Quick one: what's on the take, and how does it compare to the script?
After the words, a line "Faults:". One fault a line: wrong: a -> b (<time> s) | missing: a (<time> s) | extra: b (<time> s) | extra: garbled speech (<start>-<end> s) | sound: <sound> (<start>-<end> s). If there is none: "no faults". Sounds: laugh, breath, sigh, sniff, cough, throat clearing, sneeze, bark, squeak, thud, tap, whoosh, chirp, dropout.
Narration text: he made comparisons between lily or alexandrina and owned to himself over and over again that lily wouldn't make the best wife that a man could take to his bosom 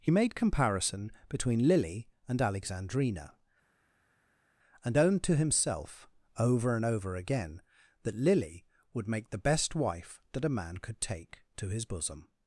he made comparison between lily and alexandrina and owned to himself over and over again that lily would make the best wife that a man could take to his bosom
Faults:
wrong: comparisons -> comparison (0.3 s)
wrong: or -> and (2.3 s)
wrong: wouldn't -> would (8.9 s)